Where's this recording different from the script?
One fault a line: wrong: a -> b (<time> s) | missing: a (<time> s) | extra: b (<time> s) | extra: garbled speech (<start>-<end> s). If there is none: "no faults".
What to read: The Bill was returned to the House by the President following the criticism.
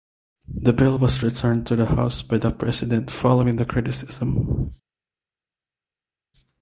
no faults